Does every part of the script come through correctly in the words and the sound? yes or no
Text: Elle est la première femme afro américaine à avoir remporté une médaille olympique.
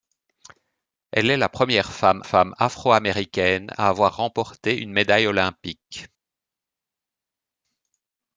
no